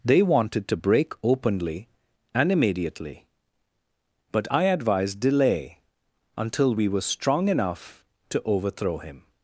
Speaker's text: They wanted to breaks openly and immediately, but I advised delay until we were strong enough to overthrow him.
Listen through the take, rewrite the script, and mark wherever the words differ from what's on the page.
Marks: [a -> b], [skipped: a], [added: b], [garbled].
They wanted to [breaks -> break] openly and immediately, but I advised delay until we were strong enough to overthrow him.